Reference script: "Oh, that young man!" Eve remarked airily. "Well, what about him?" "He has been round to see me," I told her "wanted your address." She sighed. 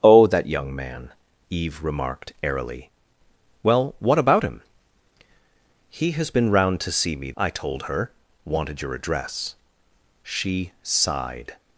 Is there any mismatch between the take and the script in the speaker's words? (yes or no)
no